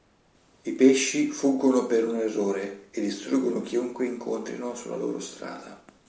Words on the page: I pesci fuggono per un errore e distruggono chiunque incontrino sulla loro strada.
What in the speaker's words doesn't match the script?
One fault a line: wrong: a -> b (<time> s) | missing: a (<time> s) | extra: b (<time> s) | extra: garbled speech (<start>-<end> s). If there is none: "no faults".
no faults